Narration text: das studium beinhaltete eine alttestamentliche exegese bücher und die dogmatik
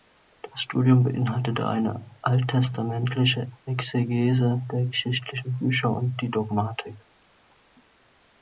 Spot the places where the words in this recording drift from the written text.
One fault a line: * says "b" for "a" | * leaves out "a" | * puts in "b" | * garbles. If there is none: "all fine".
* puts in "der geschichtlichen"